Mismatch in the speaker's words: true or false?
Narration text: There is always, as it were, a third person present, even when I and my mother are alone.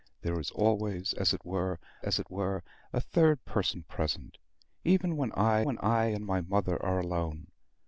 true